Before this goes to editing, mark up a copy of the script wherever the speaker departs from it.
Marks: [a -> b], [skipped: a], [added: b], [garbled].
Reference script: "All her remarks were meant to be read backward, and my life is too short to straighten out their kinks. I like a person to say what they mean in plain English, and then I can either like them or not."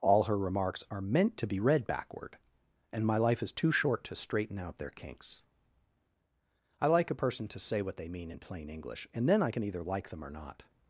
"All her remarks [were -> are] meant to be read backward, and my life is too short to straighten out their kinks. I like a person to say what they mean in plain English, and then I can either like them or not."